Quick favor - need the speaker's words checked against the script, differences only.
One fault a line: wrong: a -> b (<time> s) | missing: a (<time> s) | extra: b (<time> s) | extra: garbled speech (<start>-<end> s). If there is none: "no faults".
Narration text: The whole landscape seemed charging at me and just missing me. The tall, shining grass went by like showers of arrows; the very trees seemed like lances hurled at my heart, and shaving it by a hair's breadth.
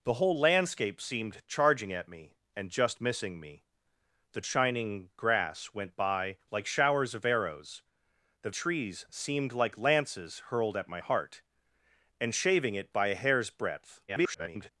missing: tall (4.4 s)
missing: very (8.5 s)
extra: garbled speech (14.1-14.7 s)